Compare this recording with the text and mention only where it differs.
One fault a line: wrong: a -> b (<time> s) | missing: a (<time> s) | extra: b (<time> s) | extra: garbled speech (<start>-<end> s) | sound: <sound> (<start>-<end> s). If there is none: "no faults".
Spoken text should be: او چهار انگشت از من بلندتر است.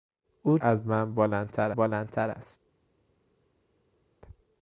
missing: چهار انگشت (0.6 s)
extra: بلندتر (1.8 s)